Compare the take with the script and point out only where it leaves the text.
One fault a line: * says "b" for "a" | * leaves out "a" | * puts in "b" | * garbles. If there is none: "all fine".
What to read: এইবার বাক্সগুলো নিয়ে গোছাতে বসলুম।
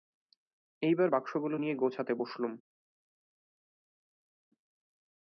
all fine